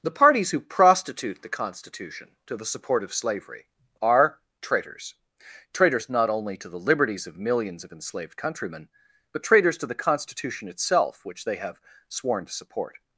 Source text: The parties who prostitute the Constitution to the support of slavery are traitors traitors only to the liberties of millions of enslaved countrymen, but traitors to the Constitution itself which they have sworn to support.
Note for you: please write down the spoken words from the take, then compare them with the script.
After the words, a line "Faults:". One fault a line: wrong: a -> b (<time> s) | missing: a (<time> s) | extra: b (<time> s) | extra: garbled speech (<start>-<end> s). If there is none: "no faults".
The parties who prostitute the Constitution to the support of slavery are traitors traitors not only to the liberties of millions of enslaved countrymen, but traitors to the Constitution itself which they have sworn to support.
Faults:
extra: not (6.1 s)